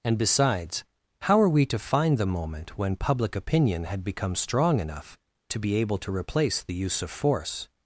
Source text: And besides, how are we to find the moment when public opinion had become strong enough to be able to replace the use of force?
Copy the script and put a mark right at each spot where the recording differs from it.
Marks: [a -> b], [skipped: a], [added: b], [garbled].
And besides, how are we to find the moment when public opinion had become strong enough to be able to replace the use of force?